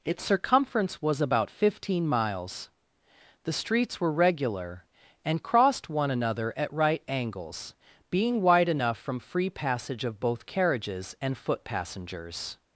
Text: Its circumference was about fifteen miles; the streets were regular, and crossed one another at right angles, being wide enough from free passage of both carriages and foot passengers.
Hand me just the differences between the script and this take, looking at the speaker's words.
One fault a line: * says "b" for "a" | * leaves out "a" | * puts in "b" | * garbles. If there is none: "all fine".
all fine